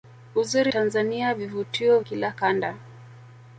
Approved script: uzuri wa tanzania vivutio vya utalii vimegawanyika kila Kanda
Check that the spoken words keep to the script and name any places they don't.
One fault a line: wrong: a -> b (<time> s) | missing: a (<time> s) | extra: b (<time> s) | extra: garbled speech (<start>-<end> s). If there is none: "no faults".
missing: wa (0.7 s)
missing: vya utalii vimegawanyika (2.0 s)